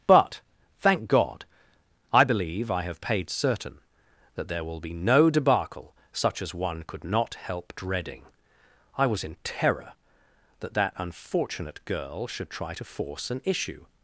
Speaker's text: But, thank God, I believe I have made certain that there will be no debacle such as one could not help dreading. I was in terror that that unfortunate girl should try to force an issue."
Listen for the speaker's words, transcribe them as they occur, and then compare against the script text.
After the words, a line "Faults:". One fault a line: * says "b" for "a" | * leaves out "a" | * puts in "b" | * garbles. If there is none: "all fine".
But, thank God, I believe I have paid certain that there will be no debacle such as one could not help dreading. I was in terror that that unfortunate girl should try to force an issue."
Faults:
* says "paid" for "made"